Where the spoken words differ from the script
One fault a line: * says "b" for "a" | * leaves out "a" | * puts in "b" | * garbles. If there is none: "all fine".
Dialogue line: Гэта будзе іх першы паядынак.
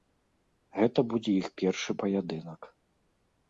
all fine